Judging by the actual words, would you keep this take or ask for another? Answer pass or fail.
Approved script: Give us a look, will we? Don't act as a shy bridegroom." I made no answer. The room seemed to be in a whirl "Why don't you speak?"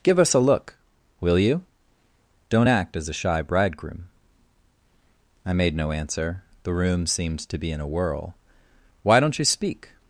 fail